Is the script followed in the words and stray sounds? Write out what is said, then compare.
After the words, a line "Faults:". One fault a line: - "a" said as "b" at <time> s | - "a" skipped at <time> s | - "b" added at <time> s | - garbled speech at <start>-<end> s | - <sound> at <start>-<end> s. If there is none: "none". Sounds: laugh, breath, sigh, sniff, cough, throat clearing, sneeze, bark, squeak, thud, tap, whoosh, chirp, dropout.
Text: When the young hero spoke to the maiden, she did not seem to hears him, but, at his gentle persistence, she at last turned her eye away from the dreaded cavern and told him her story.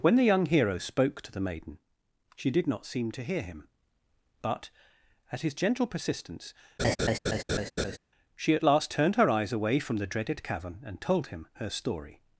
When the young hero spoke to the maiden, she did not seem to hear him, but, at his gentle persistence, she at last turned her eyes away from the dreaded cavern and told him her story.
Faults:
- "hears" said as "hear" at 3.2 s
- laugh at 6.8-8.0 s
- "eye" said as "eyes" at 9.3 s